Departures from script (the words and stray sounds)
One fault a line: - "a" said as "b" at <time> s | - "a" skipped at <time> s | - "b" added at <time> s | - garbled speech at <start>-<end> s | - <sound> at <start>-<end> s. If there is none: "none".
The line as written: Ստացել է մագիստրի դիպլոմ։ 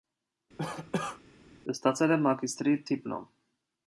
- cough at 0.6-1.2 s